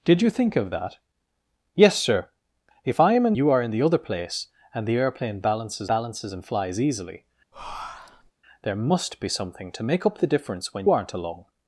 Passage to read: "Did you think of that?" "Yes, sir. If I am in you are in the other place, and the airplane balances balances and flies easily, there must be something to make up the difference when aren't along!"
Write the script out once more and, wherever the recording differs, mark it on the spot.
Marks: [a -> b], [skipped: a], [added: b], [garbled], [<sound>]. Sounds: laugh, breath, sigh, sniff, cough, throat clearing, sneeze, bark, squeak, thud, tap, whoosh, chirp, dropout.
"Did you think of that?" "Yes, sir. If I am in you are in the other place, and the airplane balances balances and flies easily, [breath] there must be something to make up the difference when aren't along!"